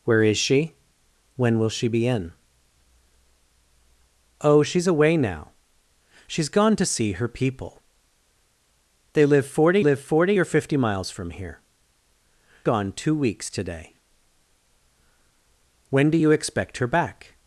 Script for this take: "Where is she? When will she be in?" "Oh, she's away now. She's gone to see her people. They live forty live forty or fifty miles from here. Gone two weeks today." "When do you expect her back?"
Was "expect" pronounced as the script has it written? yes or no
yes